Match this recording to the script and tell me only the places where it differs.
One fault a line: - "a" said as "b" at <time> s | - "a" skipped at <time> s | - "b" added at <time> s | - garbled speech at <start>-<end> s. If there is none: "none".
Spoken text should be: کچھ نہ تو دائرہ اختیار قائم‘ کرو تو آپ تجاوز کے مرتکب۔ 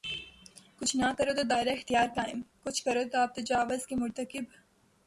- "کرو" added at 1.2 s
- "کچھ" added at 2.6 s